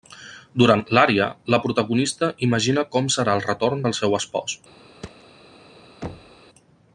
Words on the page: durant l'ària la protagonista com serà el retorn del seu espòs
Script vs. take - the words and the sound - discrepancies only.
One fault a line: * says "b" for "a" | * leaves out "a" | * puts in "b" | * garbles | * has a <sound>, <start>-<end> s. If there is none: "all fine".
* puts in "imagina"
* has a thud, 5.0-5.2 s
* has a thud, 6.0-6.4 s